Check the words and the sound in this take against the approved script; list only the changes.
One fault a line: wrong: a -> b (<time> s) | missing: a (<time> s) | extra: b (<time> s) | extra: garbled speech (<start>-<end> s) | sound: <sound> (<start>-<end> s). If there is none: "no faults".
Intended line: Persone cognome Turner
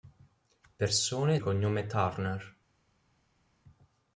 no faults